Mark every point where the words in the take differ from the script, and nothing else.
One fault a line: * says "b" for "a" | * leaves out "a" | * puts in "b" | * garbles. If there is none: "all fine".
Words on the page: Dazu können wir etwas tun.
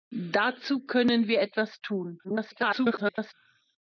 * garbles